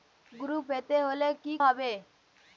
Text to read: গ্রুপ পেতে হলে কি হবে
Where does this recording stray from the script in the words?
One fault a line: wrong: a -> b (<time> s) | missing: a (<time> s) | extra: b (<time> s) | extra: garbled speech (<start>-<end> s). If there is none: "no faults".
no faults